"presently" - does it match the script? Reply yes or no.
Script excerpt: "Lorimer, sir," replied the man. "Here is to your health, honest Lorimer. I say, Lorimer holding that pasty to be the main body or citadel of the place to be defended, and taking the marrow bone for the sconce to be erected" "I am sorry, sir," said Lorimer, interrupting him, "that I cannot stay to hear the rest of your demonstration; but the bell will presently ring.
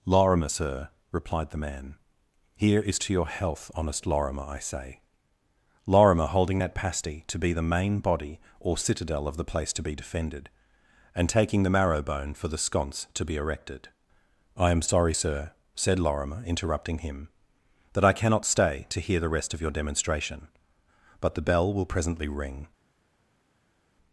yes